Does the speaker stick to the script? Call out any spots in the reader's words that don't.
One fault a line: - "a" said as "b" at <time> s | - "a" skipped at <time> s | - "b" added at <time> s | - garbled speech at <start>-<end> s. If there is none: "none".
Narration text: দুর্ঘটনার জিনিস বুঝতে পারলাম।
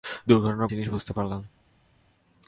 none